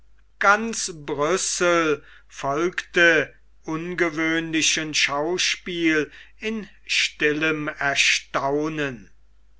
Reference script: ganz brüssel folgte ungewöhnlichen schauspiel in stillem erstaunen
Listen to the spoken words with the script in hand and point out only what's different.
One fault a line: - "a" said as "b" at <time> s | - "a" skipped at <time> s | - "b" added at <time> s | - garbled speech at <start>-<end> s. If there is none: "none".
none